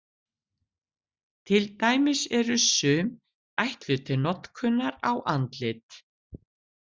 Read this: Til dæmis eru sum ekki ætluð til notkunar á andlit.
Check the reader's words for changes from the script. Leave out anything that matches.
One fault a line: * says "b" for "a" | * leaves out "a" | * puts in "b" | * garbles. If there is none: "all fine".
* leaves out "ekki"